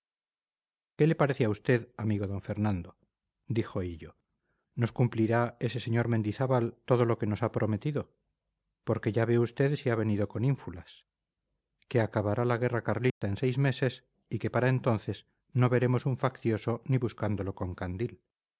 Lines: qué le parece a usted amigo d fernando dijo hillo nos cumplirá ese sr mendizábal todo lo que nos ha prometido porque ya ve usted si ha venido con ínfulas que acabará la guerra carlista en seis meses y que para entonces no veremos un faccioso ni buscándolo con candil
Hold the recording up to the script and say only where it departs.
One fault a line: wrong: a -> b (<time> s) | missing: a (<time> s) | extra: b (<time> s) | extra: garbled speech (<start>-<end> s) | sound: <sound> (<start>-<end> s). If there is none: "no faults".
sound: dropout (13.1-13.2 s)